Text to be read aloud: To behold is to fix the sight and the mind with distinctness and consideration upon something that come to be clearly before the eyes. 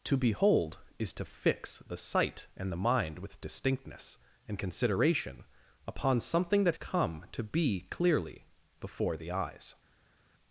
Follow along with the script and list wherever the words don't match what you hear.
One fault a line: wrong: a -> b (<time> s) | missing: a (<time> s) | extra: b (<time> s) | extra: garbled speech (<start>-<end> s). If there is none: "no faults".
no faults